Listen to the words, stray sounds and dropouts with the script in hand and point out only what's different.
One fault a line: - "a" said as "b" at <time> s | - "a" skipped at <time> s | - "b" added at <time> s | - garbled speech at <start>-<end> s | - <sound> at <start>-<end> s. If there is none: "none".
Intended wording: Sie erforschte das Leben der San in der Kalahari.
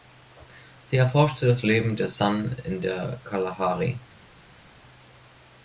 none